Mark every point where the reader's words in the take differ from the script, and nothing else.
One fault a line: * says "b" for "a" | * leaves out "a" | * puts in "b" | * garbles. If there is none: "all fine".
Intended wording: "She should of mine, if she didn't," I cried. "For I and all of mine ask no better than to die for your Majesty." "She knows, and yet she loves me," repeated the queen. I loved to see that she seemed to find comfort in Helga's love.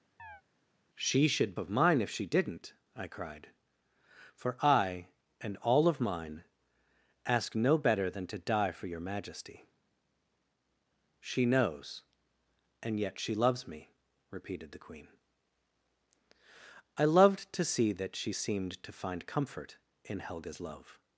all fine